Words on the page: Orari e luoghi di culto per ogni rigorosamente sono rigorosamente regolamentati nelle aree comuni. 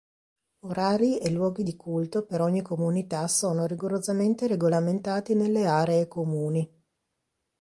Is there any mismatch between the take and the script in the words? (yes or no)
yes